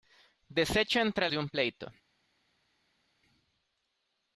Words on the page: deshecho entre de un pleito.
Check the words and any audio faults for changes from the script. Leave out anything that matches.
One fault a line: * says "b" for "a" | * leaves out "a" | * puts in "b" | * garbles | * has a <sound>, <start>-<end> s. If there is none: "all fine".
all fine